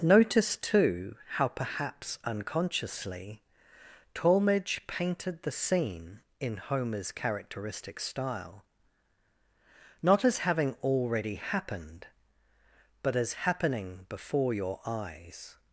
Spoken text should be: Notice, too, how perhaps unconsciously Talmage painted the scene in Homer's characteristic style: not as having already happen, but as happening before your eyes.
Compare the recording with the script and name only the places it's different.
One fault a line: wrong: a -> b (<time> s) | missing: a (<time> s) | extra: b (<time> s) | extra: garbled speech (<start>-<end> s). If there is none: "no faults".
wrong: happen -> happened (11.3 s)